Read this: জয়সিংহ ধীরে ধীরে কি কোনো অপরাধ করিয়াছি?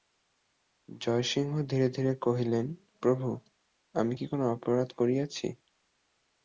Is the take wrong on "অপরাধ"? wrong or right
right